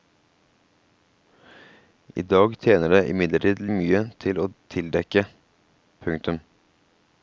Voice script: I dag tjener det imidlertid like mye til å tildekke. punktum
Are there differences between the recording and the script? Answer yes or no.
yes